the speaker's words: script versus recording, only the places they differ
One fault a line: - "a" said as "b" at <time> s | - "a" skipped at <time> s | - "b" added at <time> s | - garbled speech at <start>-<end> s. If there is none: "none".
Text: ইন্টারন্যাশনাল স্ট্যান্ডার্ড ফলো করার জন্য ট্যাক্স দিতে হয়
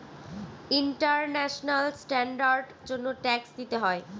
- "ফলো করার" skipped at 2.6 s